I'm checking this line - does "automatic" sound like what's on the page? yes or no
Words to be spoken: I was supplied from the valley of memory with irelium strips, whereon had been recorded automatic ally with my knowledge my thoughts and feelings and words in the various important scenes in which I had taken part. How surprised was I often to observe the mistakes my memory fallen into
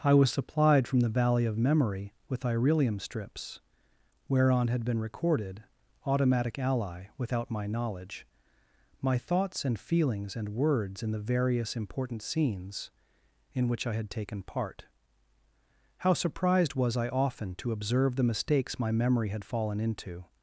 yes